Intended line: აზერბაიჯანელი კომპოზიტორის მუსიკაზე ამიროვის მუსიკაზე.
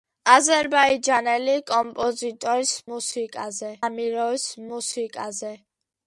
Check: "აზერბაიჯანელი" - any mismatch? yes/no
no